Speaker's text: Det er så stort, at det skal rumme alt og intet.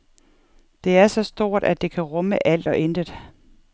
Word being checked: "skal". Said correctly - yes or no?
no